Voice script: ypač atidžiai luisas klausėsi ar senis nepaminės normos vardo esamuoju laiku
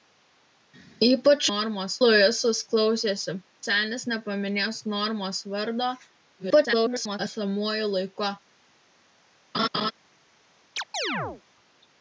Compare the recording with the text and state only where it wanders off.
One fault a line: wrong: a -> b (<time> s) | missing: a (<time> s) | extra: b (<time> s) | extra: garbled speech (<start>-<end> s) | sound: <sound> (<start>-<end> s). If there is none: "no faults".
wrong: atidžiai -> normos (1.5 s)
missing: ar (3.3 s)
extra: garbled speech (6.4-7.2 s)
sound: laugh (9.5-9.9 s)
sound: chirp (10.8-11.4 s)